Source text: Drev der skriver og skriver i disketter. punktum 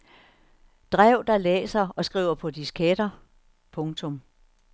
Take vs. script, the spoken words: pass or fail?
fail